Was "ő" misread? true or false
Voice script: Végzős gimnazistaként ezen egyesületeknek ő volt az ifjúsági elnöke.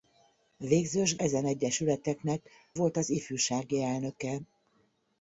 true